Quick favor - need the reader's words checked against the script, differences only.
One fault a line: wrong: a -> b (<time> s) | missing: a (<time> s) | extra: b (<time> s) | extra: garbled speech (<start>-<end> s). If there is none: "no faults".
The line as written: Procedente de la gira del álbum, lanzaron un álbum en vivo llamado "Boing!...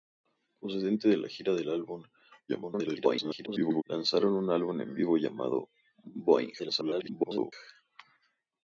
extra: garbled speech (2.5-3.8 s)
extra: garbled speech (6.6-7.5 s)